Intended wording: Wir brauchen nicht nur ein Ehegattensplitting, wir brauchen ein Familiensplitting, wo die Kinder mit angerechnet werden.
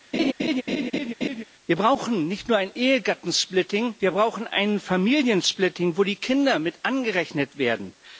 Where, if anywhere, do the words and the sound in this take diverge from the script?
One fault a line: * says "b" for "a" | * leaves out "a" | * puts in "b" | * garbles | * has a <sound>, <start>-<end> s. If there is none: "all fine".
* has a laugh, 0.1-1.4 s